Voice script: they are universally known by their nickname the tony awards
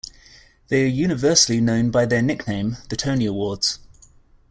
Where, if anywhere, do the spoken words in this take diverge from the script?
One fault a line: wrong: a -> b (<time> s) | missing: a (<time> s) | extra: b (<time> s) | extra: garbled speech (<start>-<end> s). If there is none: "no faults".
no faults